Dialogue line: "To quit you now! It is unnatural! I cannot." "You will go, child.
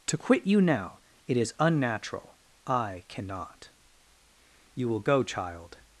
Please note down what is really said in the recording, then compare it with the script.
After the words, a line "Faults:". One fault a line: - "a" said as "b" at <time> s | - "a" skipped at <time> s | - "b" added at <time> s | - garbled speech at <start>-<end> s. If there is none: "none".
"To quit you now! It is unnatural! I cannot." "You will go, child.
Faults:
none